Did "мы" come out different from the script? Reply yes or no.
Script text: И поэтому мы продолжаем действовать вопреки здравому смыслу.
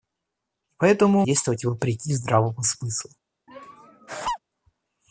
yes